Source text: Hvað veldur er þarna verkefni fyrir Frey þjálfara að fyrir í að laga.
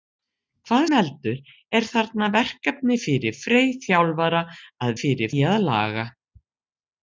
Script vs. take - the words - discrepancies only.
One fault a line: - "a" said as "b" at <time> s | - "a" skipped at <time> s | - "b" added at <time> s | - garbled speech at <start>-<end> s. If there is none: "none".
none